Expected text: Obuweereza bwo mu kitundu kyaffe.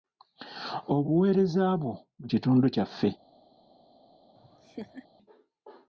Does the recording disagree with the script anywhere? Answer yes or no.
no